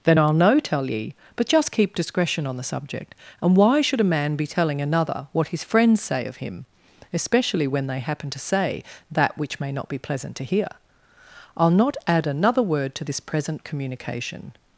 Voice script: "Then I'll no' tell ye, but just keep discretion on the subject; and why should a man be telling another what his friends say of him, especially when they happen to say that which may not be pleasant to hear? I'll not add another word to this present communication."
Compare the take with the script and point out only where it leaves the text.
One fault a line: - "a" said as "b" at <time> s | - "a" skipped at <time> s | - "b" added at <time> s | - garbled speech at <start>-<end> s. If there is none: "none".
none